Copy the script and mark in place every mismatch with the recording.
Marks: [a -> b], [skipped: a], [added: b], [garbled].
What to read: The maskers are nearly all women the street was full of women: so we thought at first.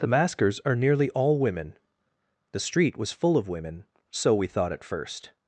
The maskers are nearly all women the street was full of women: so we thought at first.